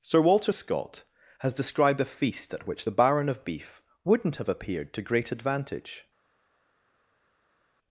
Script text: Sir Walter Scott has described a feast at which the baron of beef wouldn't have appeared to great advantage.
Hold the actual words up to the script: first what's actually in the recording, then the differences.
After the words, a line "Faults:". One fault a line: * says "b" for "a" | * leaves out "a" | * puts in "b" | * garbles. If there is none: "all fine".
Sir Walter Scott has described a feast at which the baron of beef wouldn't have appeared to great advantage.
Faults:
all fine